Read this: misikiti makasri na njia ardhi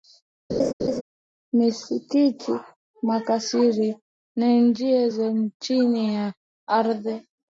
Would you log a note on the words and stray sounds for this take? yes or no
yes